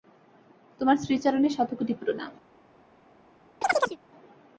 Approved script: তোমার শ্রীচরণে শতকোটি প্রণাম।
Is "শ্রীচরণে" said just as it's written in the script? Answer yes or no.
yes